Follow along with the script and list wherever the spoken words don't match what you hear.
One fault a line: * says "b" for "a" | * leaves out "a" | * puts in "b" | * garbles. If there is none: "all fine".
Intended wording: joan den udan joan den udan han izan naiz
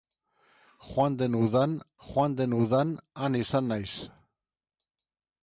all fine